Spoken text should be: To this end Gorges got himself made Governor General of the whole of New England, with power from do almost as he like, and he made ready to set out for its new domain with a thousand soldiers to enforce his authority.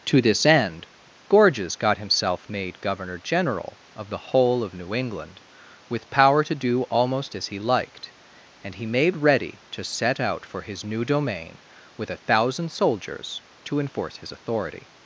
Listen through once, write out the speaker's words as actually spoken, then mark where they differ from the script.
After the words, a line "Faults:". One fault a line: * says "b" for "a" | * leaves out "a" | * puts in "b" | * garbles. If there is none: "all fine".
To this end Gorges got himself made Governor General of the whole of New England, with power to do almost as he liked, and he made ready to set out for his new domain with a thousand soldiers to enforce his authority.
Faults:
* says "to" for "from"
* says "liked" for "like"
* says "his" for "its"